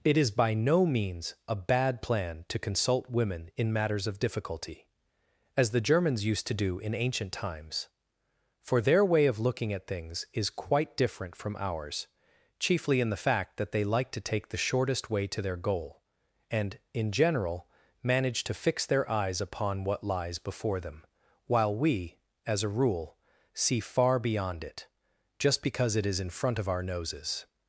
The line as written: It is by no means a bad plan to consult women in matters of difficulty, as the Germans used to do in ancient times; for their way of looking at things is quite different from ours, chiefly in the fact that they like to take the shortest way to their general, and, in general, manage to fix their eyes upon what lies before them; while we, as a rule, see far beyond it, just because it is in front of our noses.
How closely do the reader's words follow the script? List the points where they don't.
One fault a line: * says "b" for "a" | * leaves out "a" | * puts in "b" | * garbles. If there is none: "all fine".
* says "goal" for "general"